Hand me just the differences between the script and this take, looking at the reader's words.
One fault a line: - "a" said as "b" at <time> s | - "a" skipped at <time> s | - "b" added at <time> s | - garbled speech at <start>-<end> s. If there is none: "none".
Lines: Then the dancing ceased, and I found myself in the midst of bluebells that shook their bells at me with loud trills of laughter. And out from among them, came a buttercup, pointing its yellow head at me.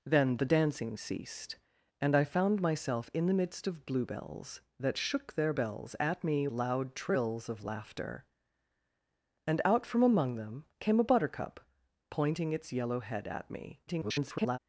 - "with" skipped at 6.5 s
- garbled speech at 13.9-14.6 s